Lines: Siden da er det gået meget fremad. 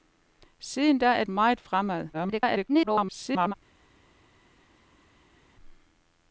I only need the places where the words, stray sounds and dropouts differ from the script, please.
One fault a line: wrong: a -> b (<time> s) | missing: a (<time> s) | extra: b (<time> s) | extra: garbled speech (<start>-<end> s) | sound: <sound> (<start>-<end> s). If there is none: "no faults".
missing: det gået (1.2 s)
extra: garbled speech (2.1-3.5 s)